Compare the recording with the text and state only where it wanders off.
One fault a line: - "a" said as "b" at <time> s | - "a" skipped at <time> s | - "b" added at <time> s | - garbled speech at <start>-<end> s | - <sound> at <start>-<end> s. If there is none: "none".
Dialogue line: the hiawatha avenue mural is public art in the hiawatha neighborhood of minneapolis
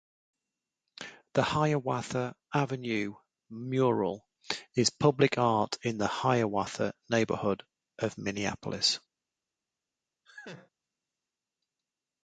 - laugh at 10.3-10.7 s